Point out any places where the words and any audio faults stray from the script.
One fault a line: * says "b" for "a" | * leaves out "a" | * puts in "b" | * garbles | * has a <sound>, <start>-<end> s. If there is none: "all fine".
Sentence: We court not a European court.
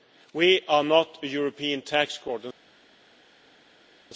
* says "are" for "court"
* puts in "tax"